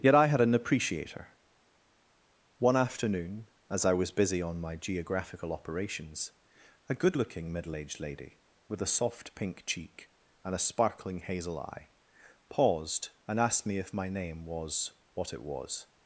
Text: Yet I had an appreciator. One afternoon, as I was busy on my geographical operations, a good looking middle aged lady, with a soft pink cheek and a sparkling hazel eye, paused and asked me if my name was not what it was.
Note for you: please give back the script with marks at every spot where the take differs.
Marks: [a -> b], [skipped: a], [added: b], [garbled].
Yet I had an appreciator. One afternoon, as I was busy on my geographical operations, a good looking middle aged lady, with a soft pink cheek and a sparkling hazel eye, paused and asked me if my name was [skipped: not] what it was.